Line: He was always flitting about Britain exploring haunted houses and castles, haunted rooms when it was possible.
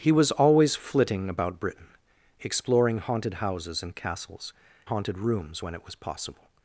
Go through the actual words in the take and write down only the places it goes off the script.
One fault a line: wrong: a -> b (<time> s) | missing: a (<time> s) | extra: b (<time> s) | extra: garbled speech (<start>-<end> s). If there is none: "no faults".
no faults